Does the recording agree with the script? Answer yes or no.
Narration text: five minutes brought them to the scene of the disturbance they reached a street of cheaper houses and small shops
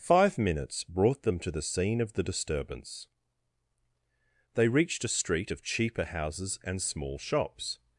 yes